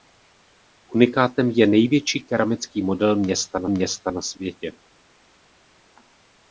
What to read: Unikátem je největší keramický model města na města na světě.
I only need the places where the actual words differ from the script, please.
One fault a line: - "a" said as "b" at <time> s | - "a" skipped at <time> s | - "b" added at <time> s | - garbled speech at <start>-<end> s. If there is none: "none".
none